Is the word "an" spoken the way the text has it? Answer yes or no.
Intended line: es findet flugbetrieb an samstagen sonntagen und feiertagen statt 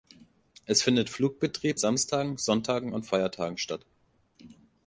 no